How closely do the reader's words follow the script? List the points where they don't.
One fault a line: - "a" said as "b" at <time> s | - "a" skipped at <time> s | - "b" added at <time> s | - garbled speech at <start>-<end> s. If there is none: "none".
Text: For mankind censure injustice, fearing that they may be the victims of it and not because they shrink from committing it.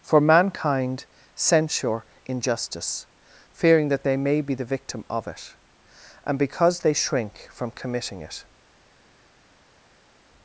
- "victims" said as "victim" at 4.6 s
- "not" skipped at 6.4 s